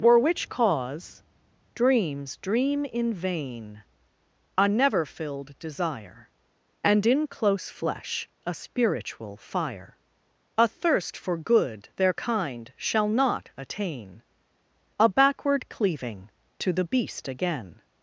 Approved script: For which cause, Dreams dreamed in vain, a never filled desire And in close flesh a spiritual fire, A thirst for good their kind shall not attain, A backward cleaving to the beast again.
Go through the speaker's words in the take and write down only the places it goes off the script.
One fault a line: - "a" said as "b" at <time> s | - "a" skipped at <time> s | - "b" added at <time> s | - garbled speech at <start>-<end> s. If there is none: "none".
- "dreamed" said as "dream" at 2.4 s